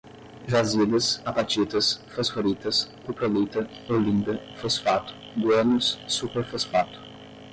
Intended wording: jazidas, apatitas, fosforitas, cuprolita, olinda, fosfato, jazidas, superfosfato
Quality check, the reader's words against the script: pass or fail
fail